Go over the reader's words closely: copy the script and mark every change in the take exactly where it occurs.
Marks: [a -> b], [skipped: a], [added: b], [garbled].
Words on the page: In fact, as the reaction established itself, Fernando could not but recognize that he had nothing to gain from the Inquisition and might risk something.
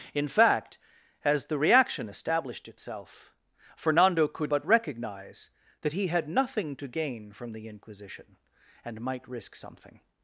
In fact, as the reaction established itself, Fernando could [skipped: not] but recognize that he had nothing to gain from the Inquisition and might risk something.